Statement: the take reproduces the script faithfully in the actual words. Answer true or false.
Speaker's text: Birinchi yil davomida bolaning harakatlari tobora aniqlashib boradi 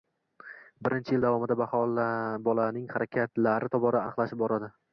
true